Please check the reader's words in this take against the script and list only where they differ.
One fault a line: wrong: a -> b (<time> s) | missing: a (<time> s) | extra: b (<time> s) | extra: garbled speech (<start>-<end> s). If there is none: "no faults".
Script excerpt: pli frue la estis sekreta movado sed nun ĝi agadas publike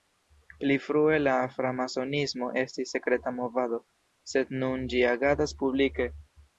extra: framasonismo (1.6 s)